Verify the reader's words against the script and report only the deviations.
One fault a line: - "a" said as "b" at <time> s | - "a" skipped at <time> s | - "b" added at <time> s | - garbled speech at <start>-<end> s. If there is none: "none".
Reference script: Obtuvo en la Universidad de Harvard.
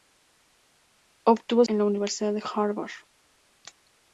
none